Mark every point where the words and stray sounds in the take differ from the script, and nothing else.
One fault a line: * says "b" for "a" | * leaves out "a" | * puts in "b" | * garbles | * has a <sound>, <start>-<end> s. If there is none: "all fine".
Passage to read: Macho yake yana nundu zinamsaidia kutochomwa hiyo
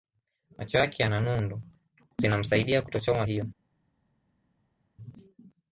all fine